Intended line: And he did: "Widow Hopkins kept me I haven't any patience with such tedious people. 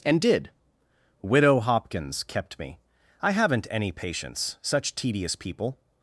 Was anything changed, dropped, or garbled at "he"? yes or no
yes